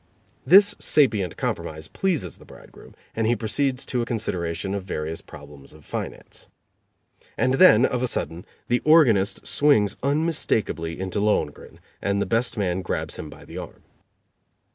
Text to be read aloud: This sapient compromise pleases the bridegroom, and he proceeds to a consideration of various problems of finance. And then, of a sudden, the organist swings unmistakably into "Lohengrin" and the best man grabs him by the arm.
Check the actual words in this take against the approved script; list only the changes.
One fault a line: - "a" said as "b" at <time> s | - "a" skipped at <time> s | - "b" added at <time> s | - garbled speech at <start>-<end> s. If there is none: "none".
none